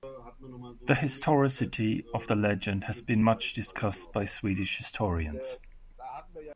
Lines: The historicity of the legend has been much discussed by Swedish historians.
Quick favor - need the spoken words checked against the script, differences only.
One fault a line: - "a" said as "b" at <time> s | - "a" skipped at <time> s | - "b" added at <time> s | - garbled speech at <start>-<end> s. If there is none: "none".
none